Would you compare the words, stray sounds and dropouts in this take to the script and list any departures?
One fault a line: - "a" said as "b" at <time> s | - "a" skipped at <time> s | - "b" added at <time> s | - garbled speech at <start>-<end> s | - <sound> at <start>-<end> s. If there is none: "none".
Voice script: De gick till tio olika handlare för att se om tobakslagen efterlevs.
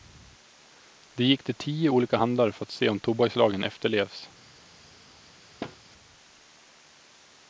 - thud at 5.6-5.8 s